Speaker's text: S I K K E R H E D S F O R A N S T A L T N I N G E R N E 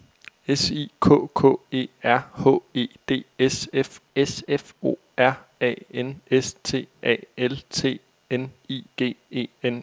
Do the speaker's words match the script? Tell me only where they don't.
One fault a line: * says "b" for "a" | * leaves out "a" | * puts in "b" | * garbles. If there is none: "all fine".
* puts in "S F"
* leaves out "N"
* leaves out "R"